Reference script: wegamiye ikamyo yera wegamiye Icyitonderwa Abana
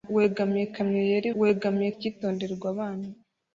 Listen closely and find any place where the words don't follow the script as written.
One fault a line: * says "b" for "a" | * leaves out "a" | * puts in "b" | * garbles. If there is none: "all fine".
all fine